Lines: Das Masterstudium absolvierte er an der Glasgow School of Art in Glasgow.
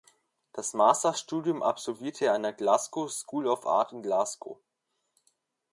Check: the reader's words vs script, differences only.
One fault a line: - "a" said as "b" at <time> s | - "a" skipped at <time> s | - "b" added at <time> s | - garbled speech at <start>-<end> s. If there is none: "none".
none